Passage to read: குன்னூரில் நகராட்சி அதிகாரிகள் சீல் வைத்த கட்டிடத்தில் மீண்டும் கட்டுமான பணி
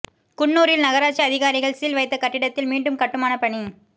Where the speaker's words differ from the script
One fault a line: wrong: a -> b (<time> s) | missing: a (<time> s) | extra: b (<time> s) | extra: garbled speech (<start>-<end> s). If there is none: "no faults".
no faults